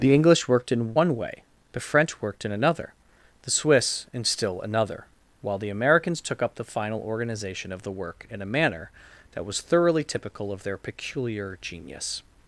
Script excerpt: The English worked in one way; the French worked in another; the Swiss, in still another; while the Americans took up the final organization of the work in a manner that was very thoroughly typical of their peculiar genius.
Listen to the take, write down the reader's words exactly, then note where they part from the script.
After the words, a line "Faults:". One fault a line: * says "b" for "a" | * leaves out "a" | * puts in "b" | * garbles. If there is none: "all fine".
The English worked in one way; the French worked in another; the Swiss, in still another; while the Americans took up the final organization of the work in a manner that was thoroughly typical of their peculiar genius.
Faults:
* leaves out "very"